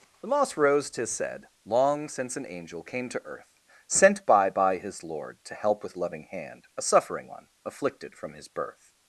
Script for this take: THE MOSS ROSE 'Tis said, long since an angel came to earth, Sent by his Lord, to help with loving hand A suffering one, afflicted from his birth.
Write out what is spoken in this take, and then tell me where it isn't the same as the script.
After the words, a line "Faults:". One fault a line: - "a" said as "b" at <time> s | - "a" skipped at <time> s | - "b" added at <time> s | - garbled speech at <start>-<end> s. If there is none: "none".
THE MOSS ROSE 'Tis said, long since an angel came to earth, Sent by by his Lord, to help with loving hand A suffering one, afflicted from his birth.
Faults:
- "by" added at 4.5 s